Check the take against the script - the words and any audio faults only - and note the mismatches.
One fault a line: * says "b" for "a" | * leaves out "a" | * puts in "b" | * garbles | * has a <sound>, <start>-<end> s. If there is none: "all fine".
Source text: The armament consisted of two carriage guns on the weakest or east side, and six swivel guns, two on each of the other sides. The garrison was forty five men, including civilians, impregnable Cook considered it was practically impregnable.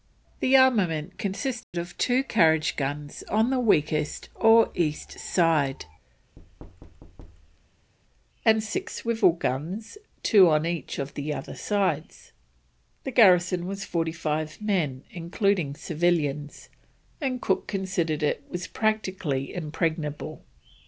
* has a dropout, 1.6-1.7 s
* has a thud, 6.4-7.9 s
* says "and" for "impregnable"